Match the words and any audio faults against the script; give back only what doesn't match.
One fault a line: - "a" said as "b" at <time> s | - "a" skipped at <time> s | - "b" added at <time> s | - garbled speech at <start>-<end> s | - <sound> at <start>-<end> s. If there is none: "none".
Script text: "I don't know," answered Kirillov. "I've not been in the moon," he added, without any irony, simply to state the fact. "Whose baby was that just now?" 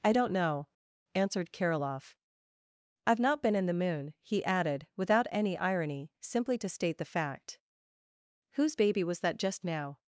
none